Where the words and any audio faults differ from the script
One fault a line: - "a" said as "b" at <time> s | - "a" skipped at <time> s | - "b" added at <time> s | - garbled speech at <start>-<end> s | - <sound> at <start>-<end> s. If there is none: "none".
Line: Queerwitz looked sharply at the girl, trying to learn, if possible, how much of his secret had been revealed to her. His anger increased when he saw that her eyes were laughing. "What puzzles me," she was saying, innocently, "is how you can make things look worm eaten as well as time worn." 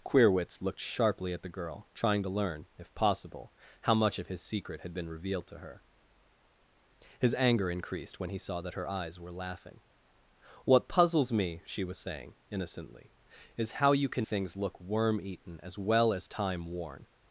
- "make" skipped at 14.3 s